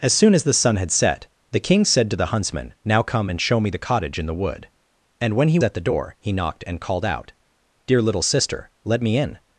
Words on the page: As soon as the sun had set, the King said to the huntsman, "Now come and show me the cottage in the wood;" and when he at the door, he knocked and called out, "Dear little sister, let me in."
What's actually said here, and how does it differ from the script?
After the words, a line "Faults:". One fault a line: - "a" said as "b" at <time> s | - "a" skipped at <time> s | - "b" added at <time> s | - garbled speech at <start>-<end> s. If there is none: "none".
As soon as the sun had set, the King said to the huntsman, "Now come and show me the cottage in the wood;" and when he at the door, he knocked and called out, "Dear little sister, let me in."
Faults:
none